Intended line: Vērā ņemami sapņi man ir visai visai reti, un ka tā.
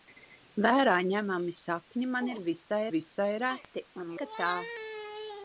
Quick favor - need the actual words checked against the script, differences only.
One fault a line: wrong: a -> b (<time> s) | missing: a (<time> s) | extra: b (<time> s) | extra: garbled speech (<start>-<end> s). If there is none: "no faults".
no faults